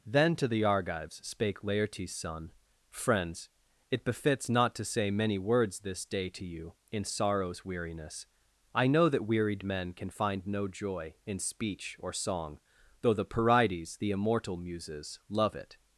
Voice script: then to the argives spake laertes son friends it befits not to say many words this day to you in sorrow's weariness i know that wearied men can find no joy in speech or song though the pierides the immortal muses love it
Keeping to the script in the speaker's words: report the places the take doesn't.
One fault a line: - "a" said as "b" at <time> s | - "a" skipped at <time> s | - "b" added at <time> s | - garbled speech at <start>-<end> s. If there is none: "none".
none